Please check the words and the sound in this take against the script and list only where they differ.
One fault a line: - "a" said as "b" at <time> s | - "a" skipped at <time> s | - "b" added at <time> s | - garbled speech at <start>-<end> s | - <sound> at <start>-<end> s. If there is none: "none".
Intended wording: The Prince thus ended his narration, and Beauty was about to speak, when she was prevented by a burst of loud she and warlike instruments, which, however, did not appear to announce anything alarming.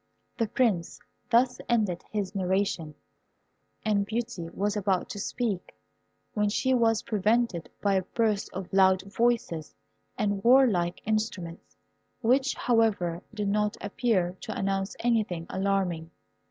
- "she" said as "voices" at 9.0 s